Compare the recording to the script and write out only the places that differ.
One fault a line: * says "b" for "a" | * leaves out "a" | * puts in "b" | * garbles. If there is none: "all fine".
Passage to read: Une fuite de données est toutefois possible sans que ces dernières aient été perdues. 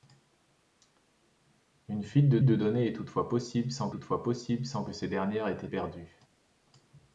* puts in "de"
* puts in "toutefois possible sans"
* leaves out "été"